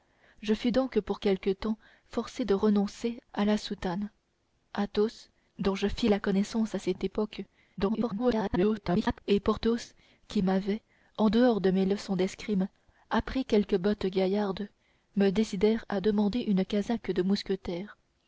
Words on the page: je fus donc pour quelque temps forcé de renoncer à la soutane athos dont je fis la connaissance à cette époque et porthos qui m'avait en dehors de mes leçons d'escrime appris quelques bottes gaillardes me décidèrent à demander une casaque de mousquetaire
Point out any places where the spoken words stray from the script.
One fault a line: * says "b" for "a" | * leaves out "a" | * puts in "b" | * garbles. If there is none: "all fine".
* garbles